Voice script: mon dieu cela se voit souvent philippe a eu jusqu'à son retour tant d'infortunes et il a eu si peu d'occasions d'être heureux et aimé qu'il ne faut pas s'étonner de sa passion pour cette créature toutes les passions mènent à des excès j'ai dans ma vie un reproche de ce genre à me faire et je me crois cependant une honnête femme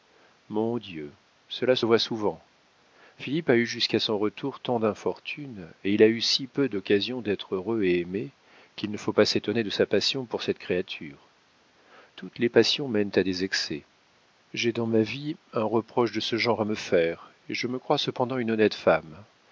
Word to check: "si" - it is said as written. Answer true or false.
true